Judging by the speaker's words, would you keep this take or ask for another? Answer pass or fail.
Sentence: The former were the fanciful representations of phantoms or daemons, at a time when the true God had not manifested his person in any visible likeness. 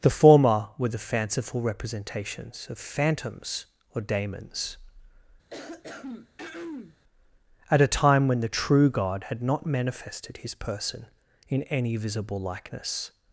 pass